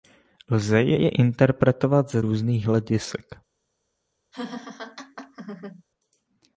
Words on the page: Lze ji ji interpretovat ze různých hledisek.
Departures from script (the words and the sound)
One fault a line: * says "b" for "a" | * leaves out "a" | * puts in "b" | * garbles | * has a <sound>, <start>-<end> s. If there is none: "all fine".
* has a laugh, 4.3-5.8 s